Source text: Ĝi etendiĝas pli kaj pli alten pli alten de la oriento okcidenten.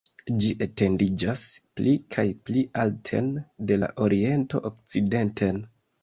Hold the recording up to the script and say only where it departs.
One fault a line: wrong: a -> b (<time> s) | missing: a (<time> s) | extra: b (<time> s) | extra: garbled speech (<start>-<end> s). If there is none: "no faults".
missing: pli alten (3.3 s)